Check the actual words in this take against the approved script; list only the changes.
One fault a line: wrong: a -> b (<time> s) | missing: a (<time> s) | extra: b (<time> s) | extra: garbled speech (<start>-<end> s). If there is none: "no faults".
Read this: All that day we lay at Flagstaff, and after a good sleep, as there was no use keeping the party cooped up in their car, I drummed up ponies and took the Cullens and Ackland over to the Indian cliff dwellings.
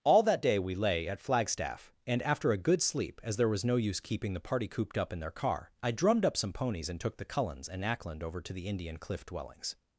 extra: some (6.3 s)